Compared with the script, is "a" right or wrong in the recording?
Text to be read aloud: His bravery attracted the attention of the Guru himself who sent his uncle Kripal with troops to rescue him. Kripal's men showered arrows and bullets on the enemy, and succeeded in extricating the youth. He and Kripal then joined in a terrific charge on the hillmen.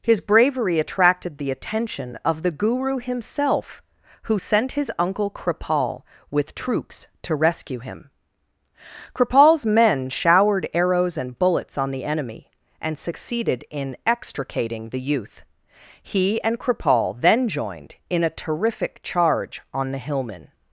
right